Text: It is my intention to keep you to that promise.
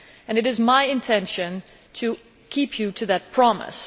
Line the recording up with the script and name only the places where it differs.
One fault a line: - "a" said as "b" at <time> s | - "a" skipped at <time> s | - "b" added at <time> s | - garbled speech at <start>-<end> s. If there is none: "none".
none